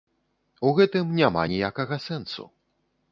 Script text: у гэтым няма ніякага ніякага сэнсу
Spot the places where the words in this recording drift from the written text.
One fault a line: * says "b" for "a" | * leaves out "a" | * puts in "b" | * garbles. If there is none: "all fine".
* leaves out "ніякага"